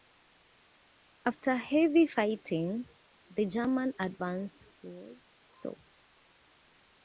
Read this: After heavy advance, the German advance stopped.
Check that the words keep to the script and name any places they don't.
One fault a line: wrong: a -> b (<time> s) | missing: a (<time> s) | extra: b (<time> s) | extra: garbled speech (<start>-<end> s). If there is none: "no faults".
wrong: advance -> fighting (2.1 s)
extra: was (4.8 s)